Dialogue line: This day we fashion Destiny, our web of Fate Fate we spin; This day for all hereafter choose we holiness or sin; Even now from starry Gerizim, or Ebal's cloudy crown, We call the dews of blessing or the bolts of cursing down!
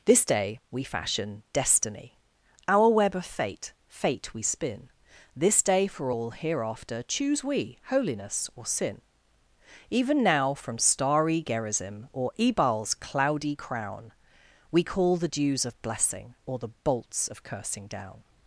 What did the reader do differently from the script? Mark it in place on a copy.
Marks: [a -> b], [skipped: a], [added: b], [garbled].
This day we fashion Destiny, our web of Fate Fate we spin; This day for all hereafter choose we holiness or sin; Even now from starry Gerizim, or Ebal's cloudy crown, We call the dews of blessing or the bolts of cursing down!